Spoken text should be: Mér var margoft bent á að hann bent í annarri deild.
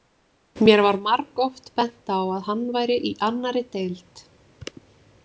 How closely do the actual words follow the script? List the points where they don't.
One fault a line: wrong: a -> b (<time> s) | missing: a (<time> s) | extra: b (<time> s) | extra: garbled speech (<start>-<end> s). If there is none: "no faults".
wrong: bent -> væri (2.8 s)